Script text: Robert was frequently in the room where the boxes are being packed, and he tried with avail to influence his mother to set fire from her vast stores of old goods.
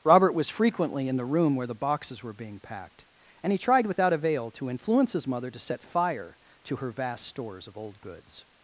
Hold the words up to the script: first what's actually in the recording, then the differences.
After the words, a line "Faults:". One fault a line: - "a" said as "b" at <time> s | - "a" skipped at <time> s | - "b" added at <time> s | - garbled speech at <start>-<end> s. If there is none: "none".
Robert was frequently in the room where the boxes were being packed, and he tried without avail to influence his mother to set fire to her vast stores of old goods.
Faults:
- "are" said as "were" at 2.2 s
- "with" said as "without" at 3.9 s
- "from" said as "to" at 6.6 s